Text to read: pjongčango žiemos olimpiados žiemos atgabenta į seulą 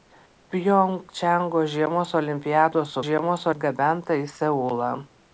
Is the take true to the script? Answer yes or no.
yes